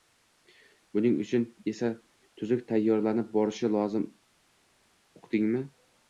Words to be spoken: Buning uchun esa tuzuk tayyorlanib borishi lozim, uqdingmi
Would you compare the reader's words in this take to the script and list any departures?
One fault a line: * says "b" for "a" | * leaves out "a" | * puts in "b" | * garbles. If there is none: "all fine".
all fine